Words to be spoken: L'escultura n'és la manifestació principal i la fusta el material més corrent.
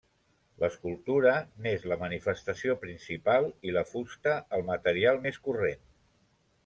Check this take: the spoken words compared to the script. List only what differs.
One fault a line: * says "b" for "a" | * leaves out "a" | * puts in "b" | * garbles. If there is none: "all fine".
all fine